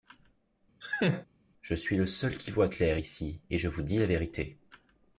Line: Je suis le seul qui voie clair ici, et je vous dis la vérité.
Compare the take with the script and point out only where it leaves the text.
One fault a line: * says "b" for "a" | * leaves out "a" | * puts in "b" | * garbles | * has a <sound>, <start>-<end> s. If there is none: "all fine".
* has a laugh, 0.8-1.3 s